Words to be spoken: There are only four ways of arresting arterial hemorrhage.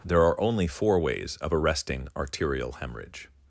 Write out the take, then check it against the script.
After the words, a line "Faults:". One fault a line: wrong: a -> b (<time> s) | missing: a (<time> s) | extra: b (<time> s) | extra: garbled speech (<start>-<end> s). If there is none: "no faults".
There are only four ways of arresting arterial hemorrhage.
Faults:
no faults